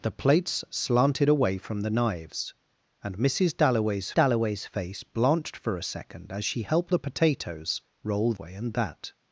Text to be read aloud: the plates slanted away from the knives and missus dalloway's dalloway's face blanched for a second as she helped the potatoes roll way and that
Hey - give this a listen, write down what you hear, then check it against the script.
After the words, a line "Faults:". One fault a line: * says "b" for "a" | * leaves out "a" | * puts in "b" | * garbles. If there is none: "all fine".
the plates slanted away from the knives and missus dalloway's dalloway's face blanched for a second as she helped the potatoes roll way and that
Faults:
all fine